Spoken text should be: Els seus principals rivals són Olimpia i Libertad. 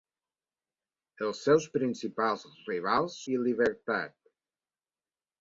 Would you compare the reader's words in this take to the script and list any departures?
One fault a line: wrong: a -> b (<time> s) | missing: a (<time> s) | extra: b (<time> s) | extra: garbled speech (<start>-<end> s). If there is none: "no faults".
missing: són Olimpia (3.2 s)